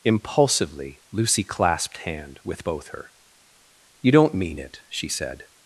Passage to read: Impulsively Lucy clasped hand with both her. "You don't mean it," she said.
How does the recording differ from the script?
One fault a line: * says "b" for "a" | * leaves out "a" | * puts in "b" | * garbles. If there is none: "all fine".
all fine